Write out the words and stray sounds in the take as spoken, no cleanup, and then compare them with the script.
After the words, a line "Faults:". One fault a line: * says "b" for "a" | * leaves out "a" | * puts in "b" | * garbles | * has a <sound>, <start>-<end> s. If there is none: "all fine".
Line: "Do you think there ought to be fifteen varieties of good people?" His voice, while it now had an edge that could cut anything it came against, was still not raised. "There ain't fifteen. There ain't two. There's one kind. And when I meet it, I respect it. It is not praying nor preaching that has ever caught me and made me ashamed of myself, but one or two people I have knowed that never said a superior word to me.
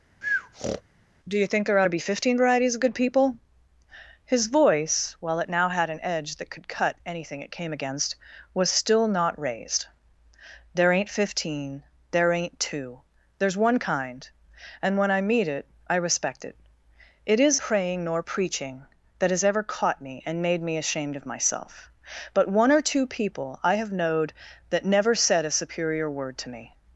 "Do you think there ought to be fifteen varieties of good people?" His voice, while it now had an edge that could cut anything it came against, was still not raised. "There ain't fifteen. There ain't two. There's one kind. And when I meet it, I respect it. It is praying nor preaching that has ever caught me and made me ashamed of myself, but one or two people I have knowed that never said a superior word to me.
Faults:
* has a breath, 0.2-0.8 s
* leaves out "not"